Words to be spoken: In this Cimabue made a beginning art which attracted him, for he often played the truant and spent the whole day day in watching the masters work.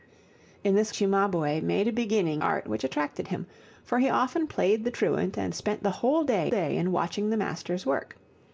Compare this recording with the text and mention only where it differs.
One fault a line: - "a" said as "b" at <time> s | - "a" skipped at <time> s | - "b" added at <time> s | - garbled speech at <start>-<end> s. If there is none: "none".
none